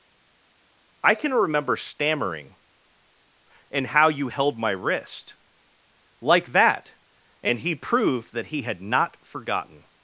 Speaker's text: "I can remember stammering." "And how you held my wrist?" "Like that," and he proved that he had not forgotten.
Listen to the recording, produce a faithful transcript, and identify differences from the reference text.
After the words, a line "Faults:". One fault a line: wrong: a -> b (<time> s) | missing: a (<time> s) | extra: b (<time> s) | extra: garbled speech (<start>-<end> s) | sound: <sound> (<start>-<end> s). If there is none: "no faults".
"I can remember stammering." "And how you held my wrist?" "Like that," and he proved that he had not forgotten.
Faults:
no faults